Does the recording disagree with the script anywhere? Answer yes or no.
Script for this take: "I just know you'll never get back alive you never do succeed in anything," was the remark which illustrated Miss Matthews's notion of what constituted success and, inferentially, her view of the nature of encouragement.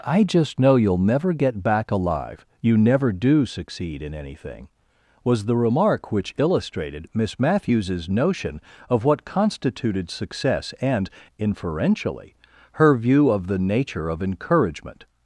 no